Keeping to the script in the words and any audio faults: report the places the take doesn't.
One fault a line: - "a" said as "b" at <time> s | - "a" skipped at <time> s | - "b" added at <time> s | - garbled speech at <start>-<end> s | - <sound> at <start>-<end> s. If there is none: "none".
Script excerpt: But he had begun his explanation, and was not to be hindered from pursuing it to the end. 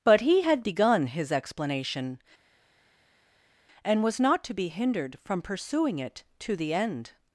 none